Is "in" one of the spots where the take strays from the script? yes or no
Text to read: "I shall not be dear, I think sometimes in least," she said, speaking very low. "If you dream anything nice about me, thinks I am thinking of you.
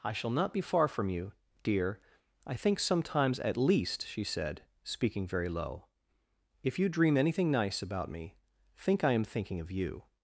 yes